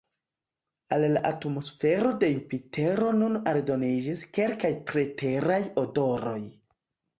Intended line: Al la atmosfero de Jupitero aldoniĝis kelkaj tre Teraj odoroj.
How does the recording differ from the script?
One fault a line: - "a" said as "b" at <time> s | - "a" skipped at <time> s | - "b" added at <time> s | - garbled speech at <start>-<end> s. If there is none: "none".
- "nun" added at 3.2 s